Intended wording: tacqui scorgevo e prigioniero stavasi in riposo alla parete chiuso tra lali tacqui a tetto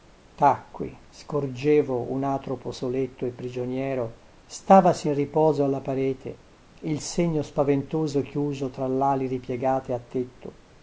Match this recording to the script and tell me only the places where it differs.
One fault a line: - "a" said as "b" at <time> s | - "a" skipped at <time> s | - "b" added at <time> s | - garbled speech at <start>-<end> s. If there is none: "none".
- "un atropo soletto" added at 2.1 s
- "il segno spaventoso" added at 6.8 s
- "tacqui" said as "ripiegate" at 9.3 s